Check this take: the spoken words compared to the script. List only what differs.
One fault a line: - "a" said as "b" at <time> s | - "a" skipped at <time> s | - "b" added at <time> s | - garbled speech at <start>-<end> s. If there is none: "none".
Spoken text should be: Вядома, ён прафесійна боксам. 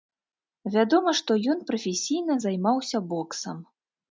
- "што" added at 1.2 s
- "займаўся" added at 2.4 s